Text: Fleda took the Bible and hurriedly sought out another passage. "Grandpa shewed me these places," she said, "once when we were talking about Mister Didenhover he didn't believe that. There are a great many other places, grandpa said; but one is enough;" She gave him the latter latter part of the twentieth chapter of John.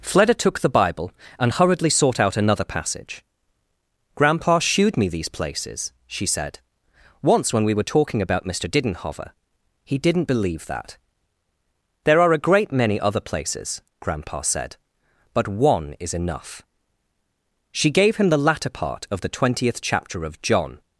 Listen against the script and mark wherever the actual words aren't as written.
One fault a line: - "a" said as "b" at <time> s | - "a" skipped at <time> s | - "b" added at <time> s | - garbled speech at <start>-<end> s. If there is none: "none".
- "latter" skipped at 18.7 s